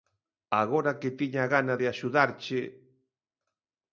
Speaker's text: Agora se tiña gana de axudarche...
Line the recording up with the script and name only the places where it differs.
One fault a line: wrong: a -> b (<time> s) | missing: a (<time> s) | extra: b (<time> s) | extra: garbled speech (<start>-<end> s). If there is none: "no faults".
wrong: se -> que (1.0 s)